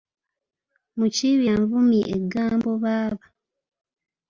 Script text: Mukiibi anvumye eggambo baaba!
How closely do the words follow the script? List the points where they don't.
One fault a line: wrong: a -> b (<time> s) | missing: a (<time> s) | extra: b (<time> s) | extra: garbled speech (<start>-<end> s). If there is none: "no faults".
no faults